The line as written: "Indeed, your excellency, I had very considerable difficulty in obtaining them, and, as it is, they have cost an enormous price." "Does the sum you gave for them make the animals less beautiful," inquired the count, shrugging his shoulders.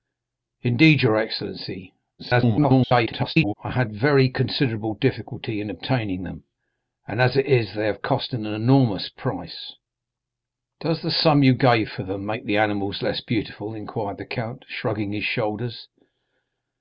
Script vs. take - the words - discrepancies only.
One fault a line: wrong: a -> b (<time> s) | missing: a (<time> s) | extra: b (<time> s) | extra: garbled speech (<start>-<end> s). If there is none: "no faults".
extra: garbled speech (2.2-3.5 s)